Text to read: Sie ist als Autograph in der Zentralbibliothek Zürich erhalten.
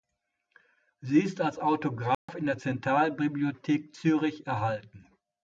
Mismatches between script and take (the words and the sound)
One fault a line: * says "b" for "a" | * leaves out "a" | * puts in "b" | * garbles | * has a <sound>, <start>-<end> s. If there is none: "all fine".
* has a dropout, 2.1-2.3 s